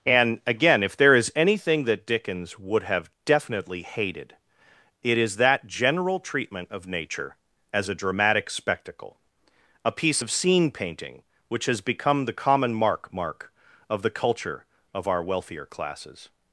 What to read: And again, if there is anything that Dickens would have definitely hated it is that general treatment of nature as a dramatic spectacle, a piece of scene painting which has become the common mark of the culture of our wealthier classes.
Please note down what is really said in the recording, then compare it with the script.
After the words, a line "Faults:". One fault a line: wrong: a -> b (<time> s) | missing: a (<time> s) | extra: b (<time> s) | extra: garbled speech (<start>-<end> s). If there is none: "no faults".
And again, if there is anything that Dickens would have definitely hated it is that general treatment of nature as a dramatic spectacle, a piece of scene painting which has become the common mark mark of the culture of our wealthier classes.
Faults:
extra: mark (13.1 s)